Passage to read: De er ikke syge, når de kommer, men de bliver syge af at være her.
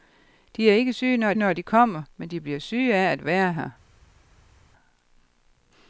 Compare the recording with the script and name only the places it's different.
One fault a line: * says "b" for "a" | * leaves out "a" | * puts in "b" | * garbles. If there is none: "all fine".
* puts in "når"